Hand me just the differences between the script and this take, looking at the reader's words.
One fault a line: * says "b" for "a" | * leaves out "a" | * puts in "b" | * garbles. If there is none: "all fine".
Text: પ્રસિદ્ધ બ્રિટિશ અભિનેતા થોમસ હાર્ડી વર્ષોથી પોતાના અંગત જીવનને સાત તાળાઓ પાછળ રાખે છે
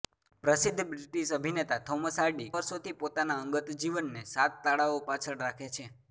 all fine